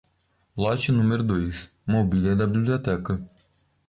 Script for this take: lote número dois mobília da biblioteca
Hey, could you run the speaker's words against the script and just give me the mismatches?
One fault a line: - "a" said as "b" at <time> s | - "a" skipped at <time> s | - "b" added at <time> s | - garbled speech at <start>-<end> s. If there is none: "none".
none